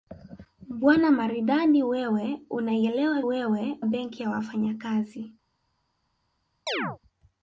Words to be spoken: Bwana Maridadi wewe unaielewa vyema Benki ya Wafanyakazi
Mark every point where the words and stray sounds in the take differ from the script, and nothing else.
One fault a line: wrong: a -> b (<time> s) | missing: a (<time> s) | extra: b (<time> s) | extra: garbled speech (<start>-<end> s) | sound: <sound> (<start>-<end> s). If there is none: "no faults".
wrong: vyema -> wewe (3.2 s)
sound: chirp (6.7-7.0 s)